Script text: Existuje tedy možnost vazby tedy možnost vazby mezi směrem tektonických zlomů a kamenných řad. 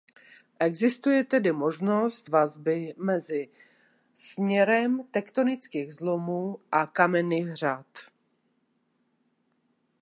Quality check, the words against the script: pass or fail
fail